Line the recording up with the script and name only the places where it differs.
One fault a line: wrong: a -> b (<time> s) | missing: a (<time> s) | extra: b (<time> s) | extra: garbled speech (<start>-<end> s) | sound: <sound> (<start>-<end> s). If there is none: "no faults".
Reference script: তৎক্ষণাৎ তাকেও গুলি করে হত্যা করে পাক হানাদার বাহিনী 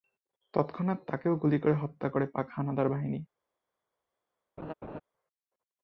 sound: laugh (4.6-5.0 s)